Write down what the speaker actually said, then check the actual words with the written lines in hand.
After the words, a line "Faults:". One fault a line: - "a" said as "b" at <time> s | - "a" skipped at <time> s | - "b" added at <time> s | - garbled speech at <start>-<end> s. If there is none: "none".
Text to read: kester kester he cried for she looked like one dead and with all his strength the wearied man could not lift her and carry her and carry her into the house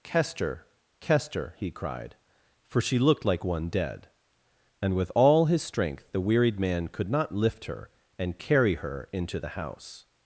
kester kester he cried for she looked like one dead and with all his strength the wearied man could not lift her and carry her into the house
Faults:
- "and carry her" skipped at 9.1 s